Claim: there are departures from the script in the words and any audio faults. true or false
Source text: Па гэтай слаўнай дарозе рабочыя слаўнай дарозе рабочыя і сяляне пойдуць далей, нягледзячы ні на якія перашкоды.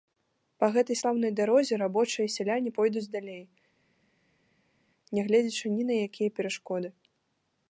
true